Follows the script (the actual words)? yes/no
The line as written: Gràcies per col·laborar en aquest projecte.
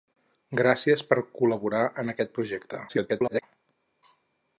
no